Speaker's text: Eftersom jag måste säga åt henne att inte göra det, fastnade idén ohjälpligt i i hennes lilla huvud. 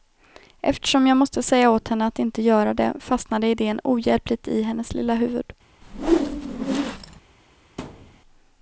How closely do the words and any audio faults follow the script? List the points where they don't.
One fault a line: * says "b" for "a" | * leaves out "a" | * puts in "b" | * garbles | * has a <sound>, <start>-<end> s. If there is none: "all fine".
* leaves out "i"
* has a whoosh, 5.8-7.2 s
* has a thud, 7.8-8.2 s